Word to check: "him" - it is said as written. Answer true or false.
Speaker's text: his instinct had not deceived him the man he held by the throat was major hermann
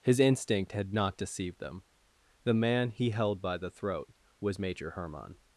false